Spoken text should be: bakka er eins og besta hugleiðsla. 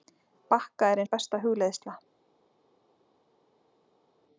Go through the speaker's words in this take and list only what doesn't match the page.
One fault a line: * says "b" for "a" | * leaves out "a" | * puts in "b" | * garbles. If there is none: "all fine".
* leaves out "eins"